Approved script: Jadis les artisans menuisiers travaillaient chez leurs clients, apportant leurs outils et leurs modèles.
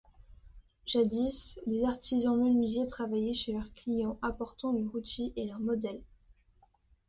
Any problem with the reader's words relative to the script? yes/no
no